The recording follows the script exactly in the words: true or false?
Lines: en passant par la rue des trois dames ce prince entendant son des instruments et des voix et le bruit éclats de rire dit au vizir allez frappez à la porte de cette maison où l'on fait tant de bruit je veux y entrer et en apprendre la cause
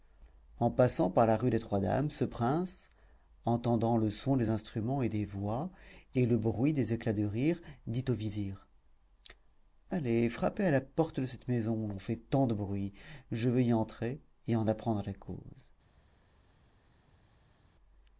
false